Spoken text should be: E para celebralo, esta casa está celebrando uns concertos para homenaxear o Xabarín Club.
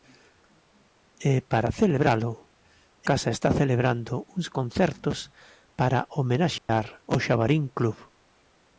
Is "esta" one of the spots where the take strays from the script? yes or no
yes